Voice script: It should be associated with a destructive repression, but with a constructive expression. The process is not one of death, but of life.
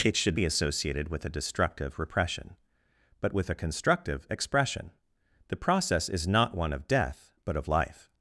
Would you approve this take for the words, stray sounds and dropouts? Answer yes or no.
yes